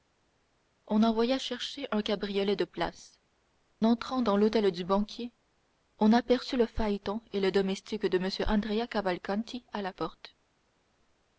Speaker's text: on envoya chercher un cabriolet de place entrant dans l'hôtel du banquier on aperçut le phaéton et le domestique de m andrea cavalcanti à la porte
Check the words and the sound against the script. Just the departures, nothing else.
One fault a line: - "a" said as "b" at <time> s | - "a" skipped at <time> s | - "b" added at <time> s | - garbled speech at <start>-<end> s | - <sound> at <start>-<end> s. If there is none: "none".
none